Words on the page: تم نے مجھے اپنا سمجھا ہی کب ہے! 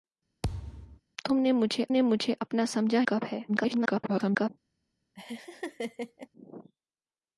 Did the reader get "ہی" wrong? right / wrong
wrong